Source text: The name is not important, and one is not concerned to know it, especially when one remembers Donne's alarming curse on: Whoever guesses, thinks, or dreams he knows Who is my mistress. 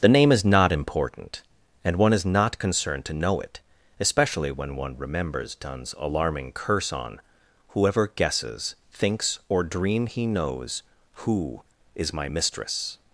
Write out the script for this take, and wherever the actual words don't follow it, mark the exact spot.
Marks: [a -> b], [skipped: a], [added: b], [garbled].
The name is not important, and one is not concerned to know it, especially when one remembers Donne's alarming curse on: Whoever guesses, thinks, or [dreams -> dream] he knows Who is my mistress.